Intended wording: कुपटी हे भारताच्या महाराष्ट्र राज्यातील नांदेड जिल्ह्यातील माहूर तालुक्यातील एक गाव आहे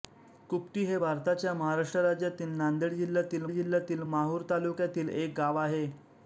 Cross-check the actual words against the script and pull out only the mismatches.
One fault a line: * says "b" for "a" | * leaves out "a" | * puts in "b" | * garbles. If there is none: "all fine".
* puts in "जिल्ह्यातील"